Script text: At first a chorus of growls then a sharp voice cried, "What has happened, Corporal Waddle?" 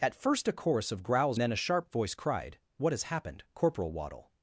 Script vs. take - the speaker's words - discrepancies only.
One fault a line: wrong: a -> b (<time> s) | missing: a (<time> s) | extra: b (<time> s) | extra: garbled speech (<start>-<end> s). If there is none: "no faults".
no faults